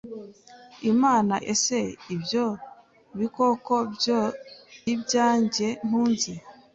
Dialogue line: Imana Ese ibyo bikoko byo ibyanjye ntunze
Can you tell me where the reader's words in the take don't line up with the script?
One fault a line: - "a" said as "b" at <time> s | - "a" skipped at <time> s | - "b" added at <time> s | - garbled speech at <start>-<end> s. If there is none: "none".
none